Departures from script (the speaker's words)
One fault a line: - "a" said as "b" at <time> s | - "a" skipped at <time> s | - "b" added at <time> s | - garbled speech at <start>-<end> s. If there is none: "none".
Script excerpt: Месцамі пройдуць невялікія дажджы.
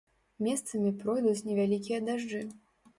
none